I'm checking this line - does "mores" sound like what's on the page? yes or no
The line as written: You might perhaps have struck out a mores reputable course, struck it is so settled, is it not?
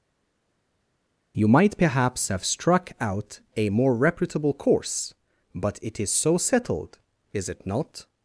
no